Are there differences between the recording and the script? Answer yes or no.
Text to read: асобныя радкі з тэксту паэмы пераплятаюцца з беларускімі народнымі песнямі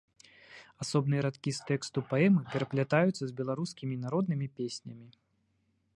no